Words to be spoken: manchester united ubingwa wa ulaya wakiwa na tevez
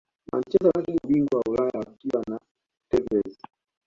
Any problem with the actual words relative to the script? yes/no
no